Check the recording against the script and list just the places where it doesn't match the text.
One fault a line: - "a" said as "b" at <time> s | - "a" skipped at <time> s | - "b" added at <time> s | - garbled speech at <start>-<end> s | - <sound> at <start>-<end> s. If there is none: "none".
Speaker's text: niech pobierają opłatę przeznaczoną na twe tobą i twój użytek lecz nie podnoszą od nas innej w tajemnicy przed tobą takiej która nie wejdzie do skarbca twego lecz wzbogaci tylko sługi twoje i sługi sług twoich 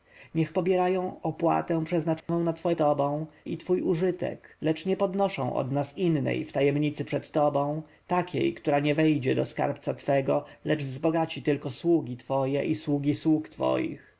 - dropout at 2.2-2.3 s